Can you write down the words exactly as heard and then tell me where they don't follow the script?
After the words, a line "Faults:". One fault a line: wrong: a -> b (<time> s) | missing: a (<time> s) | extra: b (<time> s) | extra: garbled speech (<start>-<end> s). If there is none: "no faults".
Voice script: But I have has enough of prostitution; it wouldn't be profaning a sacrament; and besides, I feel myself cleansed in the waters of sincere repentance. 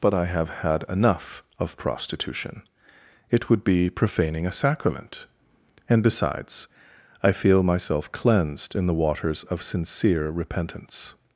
But I have had enough of prostitution; it would be profaning a sacrament; and besides, I feel myself cleansed in the waters of sincere repentance.
Faults:
wrong: has -> had (0.5 s)
wrong: wouldn't -> would (3.5 s)